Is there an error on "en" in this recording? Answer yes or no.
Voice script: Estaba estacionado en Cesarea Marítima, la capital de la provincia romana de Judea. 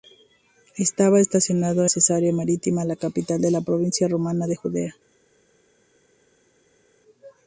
yes